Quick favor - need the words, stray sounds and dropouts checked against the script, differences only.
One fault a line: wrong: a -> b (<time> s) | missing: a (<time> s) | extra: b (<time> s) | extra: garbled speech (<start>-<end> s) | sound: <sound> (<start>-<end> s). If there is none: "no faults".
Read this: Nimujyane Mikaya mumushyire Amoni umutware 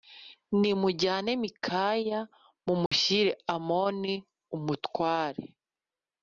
sound: dropout (2.9-2.9 s)